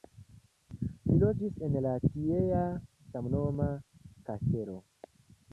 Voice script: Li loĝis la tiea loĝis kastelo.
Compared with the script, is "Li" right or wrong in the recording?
right